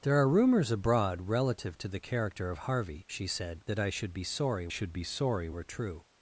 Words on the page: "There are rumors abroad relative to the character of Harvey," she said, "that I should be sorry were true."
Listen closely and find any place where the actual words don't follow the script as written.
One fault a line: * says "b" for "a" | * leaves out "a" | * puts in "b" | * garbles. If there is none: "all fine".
* puts in "should be sorry"